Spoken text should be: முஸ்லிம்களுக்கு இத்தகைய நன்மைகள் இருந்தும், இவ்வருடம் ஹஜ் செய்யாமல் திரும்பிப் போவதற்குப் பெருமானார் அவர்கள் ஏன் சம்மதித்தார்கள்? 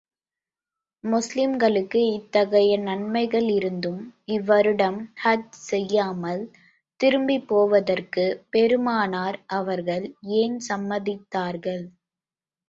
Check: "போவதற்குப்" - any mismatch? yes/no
no